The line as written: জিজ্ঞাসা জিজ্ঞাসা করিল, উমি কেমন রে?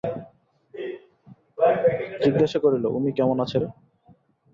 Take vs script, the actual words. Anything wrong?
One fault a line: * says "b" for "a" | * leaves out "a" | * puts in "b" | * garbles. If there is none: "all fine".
* leaves out "জিজ্ঞাসা"
* puts in "আছে"